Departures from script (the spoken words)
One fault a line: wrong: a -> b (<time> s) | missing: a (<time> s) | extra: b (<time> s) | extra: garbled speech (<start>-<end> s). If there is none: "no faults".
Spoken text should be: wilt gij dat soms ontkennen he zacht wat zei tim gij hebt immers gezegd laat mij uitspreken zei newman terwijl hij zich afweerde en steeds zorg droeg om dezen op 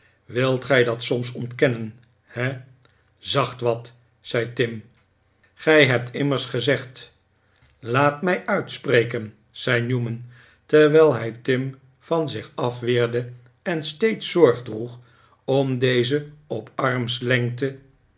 extra: tim van (11.3 s)